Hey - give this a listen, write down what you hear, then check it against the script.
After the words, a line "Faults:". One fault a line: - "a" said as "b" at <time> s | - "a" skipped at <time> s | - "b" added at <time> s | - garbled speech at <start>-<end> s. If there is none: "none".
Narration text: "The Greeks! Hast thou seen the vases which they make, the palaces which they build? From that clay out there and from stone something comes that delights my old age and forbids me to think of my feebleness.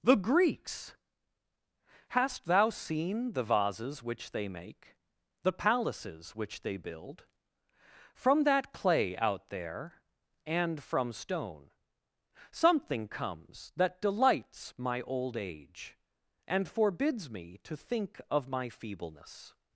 "The Greeks! Hast thou seen the vases which they make, the palaces which they build? From that clay out there and from stone something comes that delights my old age and forbids me to think of my feebleness.
Faults:
none